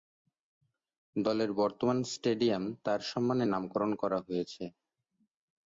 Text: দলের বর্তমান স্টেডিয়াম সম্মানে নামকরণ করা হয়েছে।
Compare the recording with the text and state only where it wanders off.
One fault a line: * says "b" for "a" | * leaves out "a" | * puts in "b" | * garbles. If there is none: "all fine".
* puts in "তার"